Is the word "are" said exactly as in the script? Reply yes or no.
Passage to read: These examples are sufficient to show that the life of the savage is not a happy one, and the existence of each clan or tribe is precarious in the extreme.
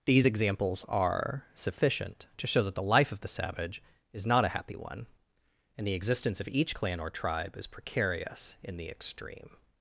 yes